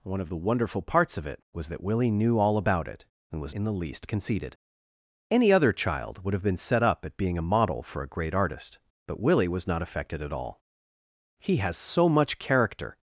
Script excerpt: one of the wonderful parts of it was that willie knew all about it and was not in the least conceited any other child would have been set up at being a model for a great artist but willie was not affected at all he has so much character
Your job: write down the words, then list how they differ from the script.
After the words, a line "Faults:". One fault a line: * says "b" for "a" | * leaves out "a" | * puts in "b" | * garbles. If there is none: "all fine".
one of the wonderful parts of it was that willie knew all about it and was in the least conceited any other child would have been set up at being a model for a great artist but willie was not affected at all he has so much character
Faults:
* leaves out "not"